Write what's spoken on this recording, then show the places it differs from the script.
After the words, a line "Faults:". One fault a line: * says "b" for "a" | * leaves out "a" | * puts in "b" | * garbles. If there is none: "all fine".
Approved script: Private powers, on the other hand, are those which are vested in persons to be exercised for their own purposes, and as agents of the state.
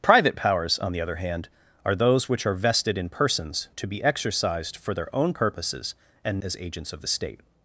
Private powers, on the other hand, are those which are vested in persons to be exercised for their own purposes, and as agents of the state.
Faults:
all fine